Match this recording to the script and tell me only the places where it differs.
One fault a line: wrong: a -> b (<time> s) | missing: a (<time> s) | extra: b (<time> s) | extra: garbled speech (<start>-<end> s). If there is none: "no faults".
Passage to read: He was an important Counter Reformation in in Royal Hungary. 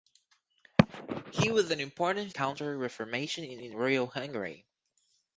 no faults